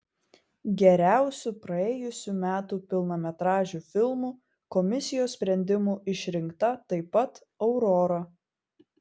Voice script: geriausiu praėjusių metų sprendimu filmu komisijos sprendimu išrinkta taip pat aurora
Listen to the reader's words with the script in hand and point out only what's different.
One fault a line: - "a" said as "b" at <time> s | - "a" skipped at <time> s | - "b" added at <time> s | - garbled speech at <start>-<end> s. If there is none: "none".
- "sprendimu" said as "pilnametražiu" at 2.9 s